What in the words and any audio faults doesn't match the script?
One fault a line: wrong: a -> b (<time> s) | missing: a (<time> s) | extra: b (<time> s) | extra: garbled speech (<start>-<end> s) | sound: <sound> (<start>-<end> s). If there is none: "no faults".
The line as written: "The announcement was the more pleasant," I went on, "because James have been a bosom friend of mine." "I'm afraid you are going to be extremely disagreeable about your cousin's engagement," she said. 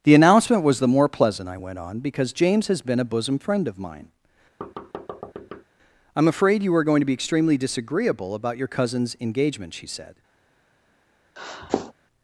wrong: have -> has (2.7 s)
sound: thud (4.6-5.6 s)
sound: sniff (11.4-11.9 s)